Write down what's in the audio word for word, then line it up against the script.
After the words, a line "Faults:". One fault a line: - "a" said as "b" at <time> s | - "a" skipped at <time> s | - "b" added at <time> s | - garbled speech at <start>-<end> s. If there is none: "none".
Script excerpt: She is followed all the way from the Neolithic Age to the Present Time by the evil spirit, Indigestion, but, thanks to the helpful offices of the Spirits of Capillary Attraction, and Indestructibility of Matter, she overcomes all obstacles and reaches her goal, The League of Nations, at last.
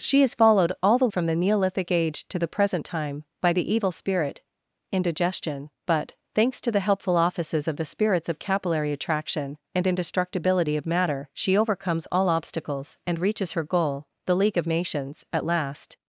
She is followed all the from the Neolithic Age to the Present Time by the evil spirit, Indigestion, but, thanks to the helpful offices of the Spirits of Capillary Attraction, and Indestructibility of Matter, she overcomes all obstacles and reaches her goal, The League of Nations, at last.
Faults:
- "way" skipped at 1.1 s